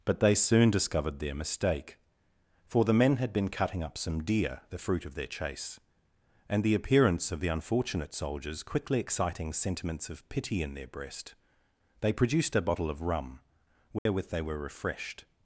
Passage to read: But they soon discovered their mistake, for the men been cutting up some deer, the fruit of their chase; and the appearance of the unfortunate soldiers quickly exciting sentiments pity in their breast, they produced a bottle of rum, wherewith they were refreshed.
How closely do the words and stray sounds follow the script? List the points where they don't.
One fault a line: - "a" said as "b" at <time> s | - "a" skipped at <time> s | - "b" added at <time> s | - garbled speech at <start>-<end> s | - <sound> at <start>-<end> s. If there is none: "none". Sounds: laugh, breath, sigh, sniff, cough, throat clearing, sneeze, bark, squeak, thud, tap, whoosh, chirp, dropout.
- "had" added at 3.2 s
- "of" added at 10.1 s
- dropout at 14.0-14.1 s